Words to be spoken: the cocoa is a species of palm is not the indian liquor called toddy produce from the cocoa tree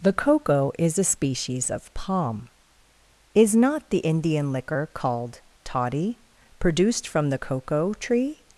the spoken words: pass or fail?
fail